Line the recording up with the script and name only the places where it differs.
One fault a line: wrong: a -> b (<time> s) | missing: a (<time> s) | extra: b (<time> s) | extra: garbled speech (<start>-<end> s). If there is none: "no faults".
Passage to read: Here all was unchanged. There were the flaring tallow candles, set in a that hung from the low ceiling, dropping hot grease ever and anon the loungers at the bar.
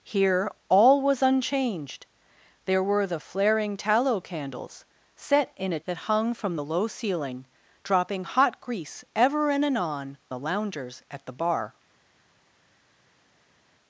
no faults